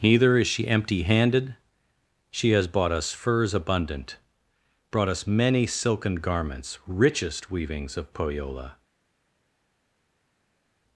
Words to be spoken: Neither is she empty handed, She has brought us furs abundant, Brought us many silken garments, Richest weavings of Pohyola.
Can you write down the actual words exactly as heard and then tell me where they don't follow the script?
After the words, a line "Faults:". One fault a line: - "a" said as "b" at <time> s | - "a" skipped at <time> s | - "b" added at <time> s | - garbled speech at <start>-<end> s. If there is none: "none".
Neither is she empty handed, She has bought us furs abundant, Brought us many silken garments, Richest weavings of Pohyola.
Faults:
- "brought" said as "bought" at 2.7 s